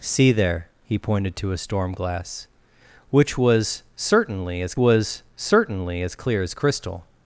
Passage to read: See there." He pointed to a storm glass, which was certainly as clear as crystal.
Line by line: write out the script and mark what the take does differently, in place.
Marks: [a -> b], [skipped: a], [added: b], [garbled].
See there." He pointed to a storm glass, which was certainly as [added: was certainly as] clear as crystal.